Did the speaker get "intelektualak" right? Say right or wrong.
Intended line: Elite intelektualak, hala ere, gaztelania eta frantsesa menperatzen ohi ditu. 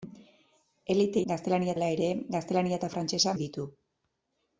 wrong